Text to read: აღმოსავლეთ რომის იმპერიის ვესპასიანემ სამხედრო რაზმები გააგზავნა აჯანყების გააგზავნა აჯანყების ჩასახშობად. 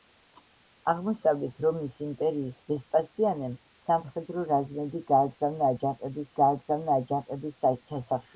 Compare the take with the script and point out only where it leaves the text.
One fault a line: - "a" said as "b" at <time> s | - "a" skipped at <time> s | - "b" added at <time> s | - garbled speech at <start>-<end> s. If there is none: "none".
none